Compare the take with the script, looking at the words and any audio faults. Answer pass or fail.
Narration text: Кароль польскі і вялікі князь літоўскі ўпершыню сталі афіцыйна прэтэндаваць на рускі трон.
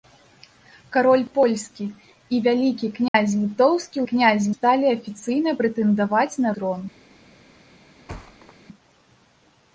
fail